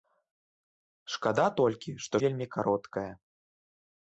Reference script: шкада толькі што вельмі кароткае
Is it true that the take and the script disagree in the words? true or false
false